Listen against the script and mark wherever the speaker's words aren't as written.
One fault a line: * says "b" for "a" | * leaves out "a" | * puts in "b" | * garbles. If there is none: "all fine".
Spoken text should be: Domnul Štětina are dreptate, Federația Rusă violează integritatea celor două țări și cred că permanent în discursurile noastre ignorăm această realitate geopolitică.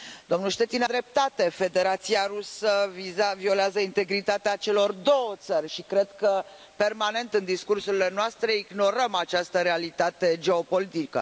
* leaves out "are"